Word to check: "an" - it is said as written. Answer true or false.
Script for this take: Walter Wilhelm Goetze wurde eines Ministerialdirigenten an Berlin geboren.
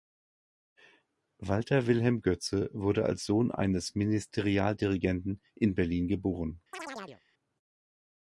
false